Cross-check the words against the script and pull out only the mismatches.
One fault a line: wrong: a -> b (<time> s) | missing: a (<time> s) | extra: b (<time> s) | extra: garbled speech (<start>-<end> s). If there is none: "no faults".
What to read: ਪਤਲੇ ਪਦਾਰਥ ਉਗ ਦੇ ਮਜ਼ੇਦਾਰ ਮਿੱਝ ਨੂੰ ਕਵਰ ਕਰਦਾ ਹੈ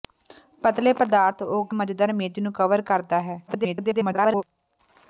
missing: ਦੇ (1.8 s)
extra: garbled speech (3.5-4.4 s)